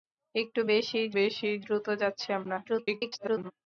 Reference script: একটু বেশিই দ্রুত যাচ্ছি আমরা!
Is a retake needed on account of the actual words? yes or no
yes